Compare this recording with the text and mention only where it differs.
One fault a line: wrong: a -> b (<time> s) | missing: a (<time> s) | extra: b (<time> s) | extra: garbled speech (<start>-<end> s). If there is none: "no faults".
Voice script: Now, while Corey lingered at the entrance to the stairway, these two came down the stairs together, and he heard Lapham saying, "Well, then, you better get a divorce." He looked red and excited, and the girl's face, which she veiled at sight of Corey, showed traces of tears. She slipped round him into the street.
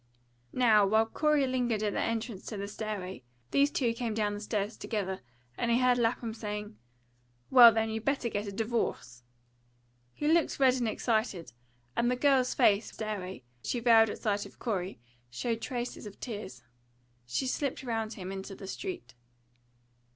wrong: which -> stairway (12.9 s)